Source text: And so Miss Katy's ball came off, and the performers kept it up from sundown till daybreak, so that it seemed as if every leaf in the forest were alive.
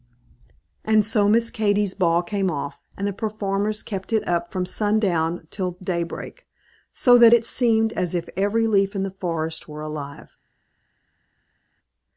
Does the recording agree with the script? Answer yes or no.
yes